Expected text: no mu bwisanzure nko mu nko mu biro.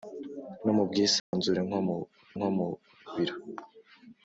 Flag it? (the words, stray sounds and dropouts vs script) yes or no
yes